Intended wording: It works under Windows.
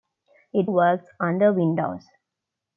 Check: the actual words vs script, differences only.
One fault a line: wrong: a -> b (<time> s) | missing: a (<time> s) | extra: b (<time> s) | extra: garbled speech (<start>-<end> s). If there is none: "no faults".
no faults